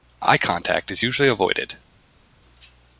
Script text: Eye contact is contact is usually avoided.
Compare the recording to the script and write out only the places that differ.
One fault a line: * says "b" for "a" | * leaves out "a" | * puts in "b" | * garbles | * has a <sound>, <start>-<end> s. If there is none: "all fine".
* leaves out "contact is"